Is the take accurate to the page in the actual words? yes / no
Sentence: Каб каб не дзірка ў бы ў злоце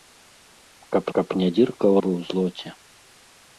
yes